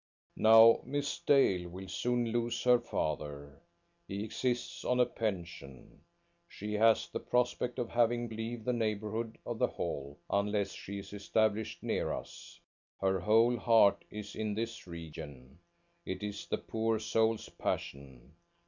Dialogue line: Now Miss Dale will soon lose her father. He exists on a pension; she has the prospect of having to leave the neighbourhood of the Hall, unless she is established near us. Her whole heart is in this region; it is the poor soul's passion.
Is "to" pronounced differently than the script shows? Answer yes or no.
yes